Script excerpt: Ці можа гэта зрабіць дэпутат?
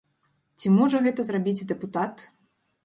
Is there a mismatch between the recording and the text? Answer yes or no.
no